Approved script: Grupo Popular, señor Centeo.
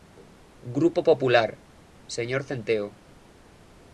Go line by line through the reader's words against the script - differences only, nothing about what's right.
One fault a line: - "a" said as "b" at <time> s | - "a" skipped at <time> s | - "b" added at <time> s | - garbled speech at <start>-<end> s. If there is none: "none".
none